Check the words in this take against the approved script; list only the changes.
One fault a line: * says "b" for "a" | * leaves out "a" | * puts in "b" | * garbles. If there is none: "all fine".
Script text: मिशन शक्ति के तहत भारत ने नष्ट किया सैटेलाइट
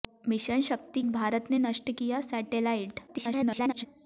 * leaves out "के तहत"
* garbles